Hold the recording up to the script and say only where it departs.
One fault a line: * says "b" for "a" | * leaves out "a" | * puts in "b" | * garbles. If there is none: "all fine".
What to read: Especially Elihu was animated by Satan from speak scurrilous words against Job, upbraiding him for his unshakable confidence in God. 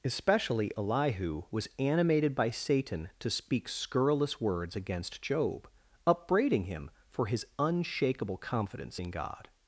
* says "to" for "from"